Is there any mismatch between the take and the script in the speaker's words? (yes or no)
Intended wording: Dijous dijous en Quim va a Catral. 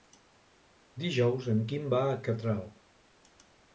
yes